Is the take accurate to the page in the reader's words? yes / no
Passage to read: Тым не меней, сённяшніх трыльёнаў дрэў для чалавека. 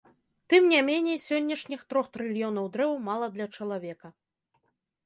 no